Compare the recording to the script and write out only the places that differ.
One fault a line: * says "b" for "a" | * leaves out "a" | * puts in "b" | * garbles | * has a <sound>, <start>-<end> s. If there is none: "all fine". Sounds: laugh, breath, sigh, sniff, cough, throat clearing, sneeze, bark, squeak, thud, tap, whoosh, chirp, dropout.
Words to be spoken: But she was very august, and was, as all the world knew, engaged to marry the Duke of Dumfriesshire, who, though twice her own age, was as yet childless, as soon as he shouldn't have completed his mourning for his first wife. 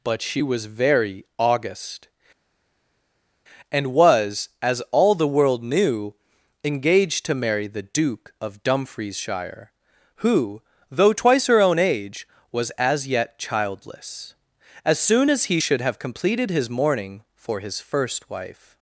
* says "should" for "shouldn't"